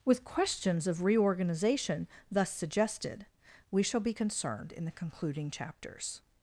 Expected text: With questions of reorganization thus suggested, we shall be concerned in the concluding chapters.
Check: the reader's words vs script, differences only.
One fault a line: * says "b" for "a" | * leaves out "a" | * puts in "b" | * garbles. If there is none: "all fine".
all fine